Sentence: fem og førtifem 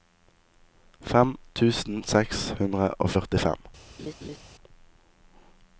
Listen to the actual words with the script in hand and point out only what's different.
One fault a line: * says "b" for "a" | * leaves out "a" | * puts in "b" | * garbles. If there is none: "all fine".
* puts in "tusen seks hundre"